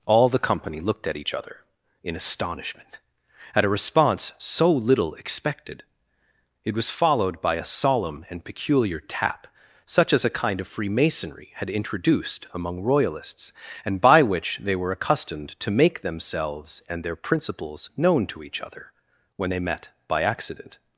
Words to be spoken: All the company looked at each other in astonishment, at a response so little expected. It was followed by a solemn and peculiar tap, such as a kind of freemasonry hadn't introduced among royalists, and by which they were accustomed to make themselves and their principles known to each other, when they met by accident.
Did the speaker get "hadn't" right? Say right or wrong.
wrong